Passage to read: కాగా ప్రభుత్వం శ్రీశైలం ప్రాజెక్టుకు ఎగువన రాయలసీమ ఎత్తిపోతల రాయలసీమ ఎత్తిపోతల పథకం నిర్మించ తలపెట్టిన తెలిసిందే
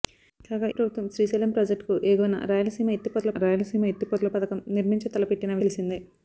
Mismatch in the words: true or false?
false